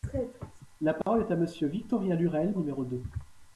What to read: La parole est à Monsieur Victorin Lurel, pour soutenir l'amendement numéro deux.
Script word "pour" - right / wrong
wrong